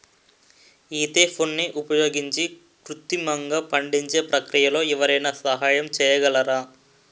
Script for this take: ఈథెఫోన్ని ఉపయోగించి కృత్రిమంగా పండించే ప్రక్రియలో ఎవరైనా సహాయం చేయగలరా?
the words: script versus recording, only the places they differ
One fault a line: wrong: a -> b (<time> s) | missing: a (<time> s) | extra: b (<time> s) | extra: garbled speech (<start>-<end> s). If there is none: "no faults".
no faults